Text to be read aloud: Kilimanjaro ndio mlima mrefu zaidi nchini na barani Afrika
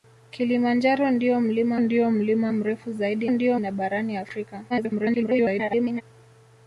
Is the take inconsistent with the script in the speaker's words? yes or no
yes